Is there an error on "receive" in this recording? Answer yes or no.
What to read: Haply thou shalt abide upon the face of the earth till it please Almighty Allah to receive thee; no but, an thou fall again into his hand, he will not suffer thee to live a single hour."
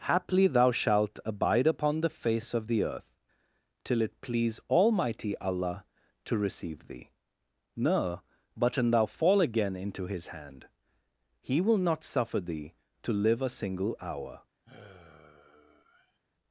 no